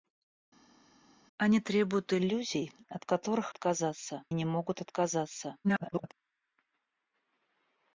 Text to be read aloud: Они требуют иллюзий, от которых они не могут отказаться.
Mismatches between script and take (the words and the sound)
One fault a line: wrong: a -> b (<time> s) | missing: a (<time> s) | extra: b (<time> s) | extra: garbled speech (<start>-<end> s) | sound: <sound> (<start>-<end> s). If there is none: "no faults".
wrong: они -> отказаться (3.5 s)
extra: garbled speech (5.6-6.1 s)